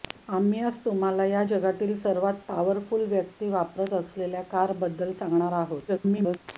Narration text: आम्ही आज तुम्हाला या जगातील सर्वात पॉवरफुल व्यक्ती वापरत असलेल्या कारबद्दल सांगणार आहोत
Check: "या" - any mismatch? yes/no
no